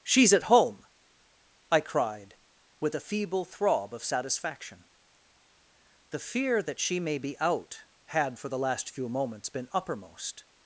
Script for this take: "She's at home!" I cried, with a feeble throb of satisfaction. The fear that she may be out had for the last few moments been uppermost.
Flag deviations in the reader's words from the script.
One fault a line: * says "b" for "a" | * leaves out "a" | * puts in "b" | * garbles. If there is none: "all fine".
all fine